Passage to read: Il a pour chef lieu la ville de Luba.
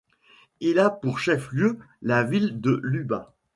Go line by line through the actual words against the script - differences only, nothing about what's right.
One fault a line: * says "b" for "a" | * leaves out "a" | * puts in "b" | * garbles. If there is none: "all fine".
all fine